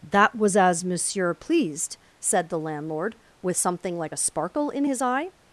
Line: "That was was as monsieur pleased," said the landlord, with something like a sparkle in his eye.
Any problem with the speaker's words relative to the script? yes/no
yes